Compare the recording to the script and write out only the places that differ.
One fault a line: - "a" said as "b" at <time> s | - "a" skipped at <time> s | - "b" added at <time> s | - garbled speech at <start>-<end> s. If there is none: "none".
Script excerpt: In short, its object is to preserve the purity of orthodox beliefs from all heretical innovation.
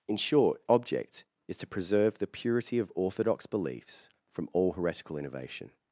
- "its" skipped at 0.6 s